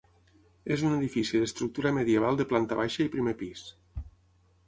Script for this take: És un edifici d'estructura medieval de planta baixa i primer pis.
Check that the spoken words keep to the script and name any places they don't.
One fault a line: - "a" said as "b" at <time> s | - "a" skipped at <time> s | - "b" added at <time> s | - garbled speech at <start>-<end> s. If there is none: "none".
none